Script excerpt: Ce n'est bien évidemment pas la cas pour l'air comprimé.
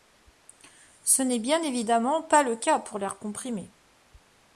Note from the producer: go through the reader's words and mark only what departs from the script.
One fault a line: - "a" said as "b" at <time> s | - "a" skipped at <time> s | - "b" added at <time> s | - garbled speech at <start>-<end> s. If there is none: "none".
- "la" said as "le" at 2.4 s